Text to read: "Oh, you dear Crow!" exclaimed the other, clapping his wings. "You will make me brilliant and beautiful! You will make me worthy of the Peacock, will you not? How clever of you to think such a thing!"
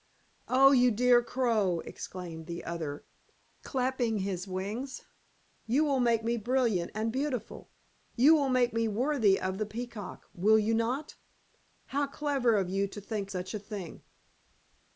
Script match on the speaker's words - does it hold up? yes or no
yes